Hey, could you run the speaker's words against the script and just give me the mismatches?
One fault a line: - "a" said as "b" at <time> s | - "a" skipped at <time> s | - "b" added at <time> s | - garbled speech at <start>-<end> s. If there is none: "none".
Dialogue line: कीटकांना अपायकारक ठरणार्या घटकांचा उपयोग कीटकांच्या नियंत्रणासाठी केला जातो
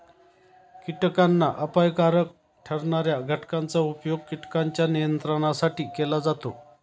none